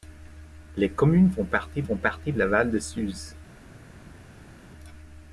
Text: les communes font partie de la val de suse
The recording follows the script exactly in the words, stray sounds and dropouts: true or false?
false